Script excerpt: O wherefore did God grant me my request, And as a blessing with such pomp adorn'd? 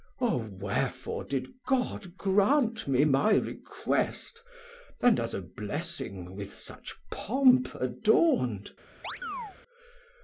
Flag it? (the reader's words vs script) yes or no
no